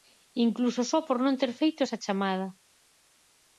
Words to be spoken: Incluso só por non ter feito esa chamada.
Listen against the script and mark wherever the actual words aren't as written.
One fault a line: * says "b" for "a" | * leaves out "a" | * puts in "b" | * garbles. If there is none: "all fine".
all fine